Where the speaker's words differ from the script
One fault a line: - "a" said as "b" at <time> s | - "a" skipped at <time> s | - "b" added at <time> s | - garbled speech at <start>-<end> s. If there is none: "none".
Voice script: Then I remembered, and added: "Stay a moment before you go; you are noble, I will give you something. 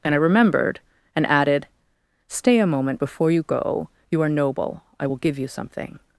- "Then" said as "And" at 0.0 s